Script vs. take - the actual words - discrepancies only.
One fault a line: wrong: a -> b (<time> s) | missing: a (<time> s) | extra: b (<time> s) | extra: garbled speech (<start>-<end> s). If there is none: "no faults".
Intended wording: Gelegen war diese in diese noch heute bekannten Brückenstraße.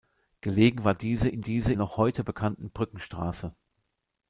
no faults